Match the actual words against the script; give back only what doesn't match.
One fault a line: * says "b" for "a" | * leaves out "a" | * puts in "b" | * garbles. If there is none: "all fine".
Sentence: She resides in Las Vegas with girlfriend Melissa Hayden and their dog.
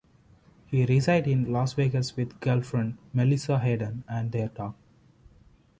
* says "He" for "She"